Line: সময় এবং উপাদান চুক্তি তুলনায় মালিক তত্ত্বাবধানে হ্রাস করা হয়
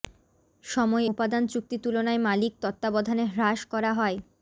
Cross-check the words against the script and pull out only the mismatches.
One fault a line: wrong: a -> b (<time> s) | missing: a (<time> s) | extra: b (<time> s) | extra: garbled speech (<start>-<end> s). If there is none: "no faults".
missing: এবং (1.1 s)